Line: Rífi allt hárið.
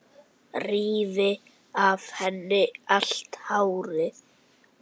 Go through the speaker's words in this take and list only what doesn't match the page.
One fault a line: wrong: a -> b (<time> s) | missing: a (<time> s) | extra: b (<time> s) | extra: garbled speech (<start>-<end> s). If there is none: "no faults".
extra: af henni (1.9 s)